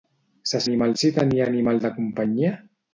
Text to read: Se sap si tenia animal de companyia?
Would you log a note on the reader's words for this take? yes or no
yes